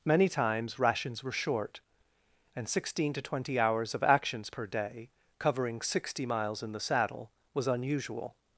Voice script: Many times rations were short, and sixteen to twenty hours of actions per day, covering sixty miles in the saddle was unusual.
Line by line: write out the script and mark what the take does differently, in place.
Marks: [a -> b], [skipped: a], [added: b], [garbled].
Many times rations were short, and sixteen to twenty hours of actions per day, covering sixty miles in the saddle was unusual.